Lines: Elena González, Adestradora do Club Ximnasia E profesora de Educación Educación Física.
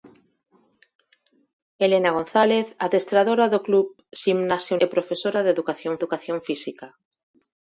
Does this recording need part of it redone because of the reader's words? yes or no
no